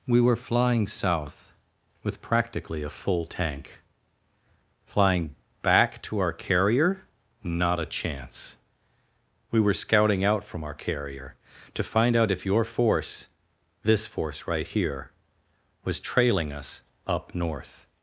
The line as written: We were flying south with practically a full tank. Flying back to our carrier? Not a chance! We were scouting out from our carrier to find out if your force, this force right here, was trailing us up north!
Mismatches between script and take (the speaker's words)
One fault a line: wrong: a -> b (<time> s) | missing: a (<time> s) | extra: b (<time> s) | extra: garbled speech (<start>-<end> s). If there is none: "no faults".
no faults